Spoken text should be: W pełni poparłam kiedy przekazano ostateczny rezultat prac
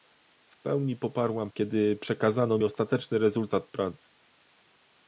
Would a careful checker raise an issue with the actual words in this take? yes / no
no